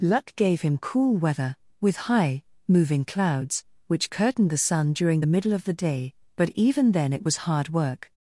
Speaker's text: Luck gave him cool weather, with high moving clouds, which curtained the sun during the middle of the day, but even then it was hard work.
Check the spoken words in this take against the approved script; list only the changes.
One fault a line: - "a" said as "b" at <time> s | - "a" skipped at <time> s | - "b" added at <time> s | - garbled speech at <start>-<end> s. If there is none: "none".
none